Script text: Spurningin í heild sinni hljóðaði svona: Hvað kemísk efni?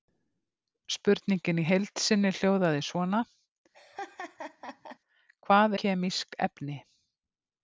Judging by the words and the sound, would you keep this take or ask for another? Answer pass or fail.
fail